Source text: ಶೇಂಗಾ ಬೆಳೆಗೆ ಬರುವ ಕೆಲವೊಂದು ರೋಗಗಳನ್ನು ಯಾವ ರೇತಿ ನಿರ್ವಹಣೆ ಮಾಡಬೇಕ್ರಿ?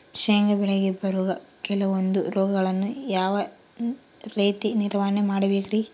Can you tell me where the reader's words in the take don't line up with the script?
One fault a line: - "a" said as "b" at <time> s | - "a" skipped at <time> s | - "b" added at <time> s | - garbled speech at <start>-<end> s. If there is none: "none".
none